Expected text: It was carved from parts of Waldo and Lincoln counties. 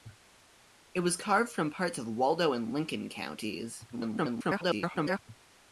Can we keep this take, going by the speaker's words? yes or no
no